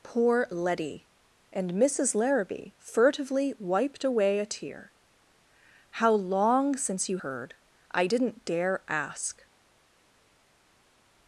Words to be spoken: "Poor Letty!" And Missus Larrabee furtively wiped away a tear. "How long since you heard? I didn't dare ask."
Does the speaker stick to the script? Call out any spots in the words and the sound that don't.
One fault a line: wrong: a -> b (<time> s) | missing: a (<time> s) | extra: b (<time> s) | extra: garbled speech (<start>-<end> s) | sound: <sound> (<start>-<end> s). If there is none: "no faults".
no faults